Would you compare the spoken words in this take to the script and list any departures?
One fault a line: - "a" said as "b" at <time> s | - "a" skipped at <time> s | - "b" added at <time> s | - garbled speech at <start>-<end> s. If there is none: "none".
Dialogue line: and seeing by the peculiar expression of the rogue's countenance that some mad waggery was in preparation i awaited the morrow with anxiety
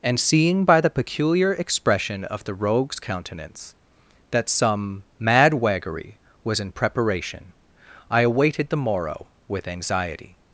none